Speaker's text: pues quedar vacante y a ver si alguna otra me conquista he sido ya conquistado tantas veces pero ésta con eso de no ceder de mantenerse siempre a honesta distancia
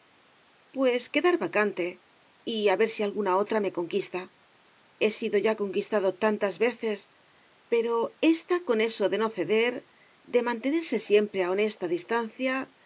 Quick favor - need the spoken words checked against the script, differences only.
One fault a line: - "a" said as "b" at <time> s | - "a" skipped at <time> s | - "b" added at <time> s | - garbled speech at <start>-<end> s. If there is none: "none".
none